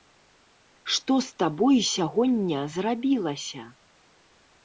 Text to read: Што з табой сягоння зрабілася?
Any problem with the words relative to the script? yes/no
no